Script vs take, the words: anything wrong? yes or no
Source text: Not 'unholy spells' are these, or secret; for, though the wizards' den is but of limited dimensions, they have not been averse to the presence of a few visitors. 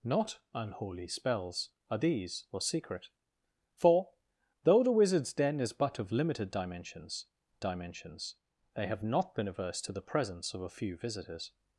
yes